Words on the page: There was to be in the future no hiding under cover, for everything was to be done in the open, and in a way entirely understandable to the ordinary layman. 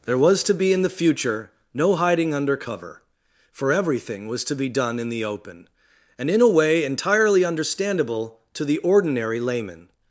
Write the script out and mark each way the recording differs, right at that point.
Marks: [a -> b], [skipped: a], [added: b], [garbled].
There was to be in the future no hiding under cover, for everything was to be done in the open, and in a way entirely understandable to the ordinary layman.